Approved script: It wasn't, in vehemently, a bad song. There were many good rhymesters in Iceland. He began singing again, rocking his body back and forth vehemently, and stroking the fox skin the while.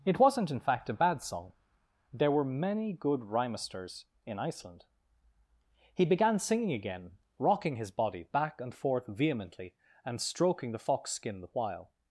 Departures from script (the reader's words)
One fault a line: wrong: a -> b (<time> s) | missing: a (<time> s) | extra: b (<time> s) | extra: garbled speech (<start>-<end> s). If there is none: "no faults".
wrong: vehemently -> fact (0.6 s)